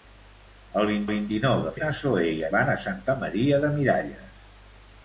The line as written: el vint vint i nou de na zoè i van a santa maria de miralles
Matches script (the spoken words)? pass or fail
pass